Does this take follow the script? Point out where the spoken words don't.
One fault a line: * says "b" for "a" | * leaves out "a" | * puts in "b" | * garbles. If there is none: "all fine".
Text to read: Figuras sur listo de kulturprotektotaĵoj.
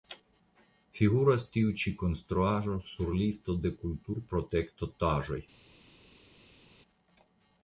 * puts in "tiu ĉi konstruaĵo"